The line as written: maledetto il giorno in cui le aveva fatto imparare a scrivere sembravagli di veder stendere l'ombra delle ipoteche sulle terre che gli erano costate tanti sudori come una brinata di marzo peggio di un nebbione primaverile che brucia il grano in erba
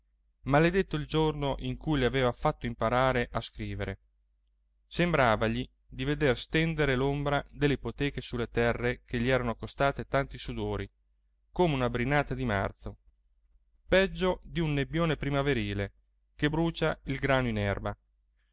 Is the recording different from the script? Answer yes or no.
no